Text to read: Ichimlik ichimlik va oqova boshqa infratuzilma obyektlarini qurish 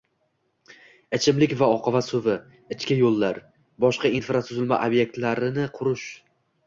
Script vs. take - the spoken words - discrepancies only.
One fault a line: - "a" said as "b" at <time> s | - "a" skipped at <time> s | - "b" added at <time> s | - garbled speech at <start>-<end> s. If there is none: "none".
- "ichimlik" skipped at 1.5 s
- "suvi ichki yo‘llar" added at 2.1 s